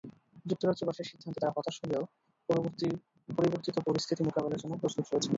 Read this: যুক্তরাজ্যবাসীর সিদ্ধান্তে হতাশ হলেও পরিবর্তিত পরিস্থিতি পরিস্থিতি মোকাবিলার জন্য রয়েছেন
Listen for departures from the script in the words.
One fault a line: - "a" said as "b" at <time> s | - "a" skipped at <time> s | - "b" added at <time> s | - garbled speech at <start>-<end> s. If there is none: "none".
- "তাঁরা" added at 1.4 s
- "পরিস্থিতি" skipped at 4.2 s
- "প্রস্তুত" added at 4.8 s